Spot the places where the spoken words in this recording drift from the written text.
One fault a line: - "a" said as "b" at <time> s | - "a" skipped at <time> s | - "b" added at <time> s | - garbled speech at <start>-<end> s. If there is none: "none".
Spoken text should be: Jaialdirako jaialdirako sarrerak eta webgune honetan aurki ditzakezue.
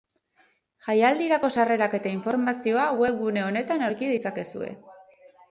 - "jaialdirako" skipped at 1.5 s
- "informazioa" added at 2.1 s